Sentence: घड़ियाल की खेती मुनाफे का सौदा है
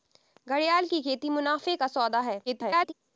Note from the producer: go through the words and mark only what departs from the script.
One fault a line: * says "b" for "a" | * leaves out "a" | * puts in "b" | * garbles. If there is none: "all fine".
* garbles